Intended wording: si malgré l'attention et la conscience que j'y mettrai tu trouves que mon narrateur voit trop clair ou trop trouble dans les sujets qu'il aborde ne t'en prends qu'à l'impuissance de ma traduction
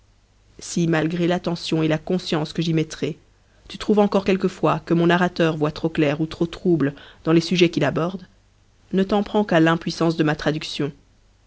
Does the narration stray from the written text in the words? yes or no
yes